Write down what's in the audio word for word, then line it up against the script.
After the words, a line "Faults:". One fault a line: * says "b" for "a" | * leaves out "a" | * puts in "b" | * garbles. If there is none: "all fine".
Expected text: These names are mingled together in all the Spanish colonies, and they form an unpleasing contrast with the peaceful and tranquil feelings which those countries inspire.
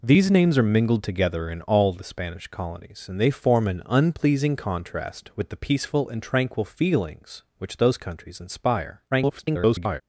These names are mingled together in all the Spanish colonies, and they form an unpleasing contrast with the peaceful and tranquil feelings which those countries inspire. [garbled]
Faults:
* garbles